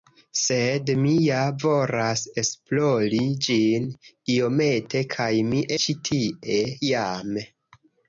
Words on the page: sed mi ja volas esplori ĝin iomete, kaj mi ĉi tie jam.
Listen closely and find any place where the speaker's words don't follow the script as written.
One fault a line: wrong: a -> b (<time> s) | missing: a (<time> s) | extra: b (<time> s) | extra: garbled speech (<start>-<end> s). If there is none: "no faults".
no faults